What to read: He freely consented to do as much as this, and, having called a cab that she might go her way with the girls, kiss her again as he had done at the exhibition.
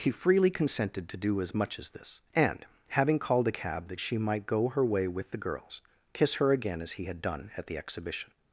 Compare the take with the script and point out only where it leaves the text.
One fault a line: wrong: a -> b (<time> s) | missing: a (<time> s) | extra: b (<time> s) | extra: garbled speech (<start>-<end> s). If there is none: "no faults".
no faults